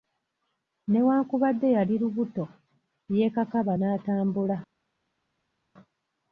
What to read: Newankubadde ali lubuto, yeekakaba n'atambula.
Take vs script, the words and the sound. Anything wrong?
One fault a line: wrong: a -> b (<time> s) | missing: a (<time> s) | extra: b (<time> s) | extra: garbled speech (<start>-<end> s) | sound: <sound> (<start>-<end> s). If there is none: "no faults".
wrong: ali -> yali (1.8 s)